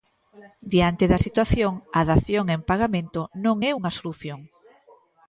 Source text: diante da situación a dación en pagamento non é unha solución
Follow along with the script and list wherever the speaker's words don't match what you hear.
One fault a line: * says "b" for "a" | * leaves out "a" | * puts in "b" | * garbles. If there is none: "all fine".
all fine